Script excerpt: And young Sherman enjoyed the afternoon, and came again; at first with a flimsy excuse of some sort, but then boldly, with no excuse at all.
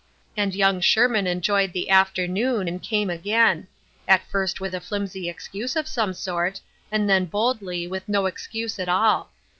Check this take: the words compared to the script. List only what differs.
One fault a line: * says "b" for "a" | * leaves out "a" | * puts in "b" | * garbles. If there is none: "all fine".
* says "and" for "but"